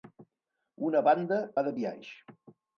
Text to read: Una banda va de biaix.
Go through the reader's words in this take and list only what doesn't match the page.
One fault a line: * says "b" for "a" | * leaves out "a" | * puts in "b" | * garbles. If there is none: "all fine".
all fine